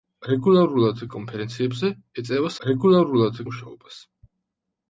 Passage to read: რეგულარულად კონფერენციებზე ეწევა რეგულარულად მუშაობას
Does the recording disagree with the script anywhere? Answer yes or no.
no